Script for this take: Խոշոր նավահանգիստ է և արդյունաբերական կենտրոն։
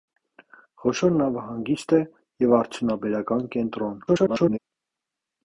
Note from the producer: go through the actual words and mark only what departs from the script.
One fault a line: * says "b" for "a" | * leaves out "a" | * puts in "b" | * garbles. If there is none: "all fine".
* garbles